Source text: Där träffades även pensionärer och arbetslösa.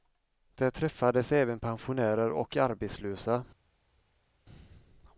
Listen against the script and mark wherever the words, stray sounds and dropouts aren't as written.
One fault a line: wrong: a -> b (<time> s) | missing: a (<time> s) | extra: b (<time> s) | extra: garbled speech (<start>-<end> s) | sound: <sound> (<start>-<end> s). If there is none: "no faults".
no faults